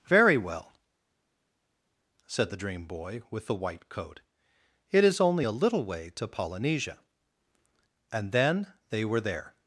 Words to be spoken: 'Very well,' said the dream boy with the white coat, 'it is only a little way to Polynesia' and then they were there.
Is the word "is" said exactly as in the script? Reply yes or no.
yes